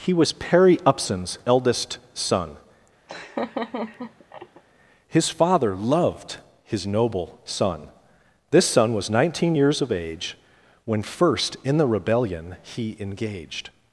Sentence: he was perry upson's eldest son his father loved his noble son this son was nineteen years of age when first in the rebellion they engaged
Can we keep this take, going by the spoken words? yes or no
no